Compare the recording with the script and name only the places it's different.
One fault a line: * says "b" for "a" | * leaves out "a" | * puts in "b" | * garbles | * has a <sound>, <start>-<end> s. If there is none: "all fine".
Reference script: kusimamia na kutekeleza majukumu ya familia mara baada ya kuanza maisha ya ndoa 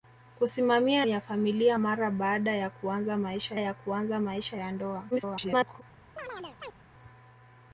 * leaves out "na kutekeleza majukumu"
* puts in "kuanza maisha ya"
* garbles
* has a chirp, 6.2-6.8 s